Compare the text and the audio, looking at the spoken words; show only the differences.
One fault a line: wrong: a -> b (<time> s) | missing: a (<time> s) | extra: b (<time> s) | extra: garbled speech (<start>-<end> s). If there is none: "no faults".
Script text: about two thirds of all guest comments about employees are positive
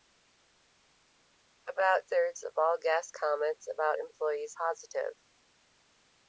missing: two (2.1 s)
missing: are (4.5 s)